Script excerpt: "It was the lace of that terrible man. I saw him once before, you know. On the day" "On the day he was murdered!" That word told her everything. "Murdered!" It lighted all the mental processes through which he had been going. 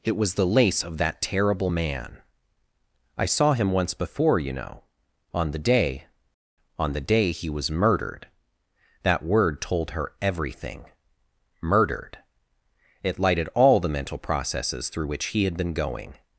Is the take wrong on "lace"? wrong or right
right